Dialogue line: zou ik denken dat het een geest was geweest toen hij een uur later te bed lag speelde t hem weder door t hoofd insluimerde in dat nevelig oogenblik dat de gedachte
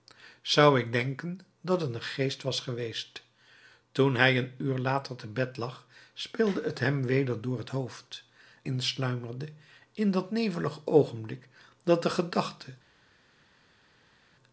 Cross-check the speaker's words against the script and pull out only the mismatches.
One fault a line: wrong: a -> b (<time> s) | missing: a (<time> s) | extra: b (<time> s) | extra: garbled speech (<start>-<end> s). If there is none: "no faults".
no faults